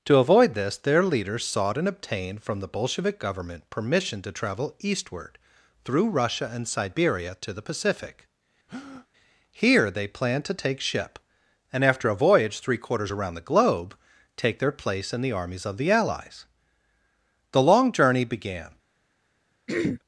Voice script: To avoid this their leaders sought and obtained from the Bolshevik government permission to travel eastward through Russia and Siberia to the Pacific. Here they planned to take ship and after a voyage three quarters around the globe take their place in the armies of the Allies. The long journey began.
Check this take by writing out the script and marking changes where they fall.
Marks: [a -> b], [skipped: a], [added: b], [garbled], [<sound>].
To avoid this their leaders sought and obtained from the Bolshevik government permission to travel eastward through Russia and Siberia to the Pacific. [breath] Here they planned to take ship and after a voyage three quarters around the globe take their place in the armies of the Allies. The long journey began. [throat clearing]